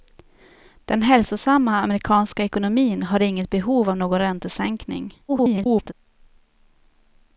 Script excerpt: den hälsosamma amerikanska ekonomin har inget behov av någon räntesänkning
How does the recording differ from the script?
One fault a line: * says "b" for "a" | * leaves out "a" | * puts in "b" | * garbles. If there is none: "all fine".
* garbles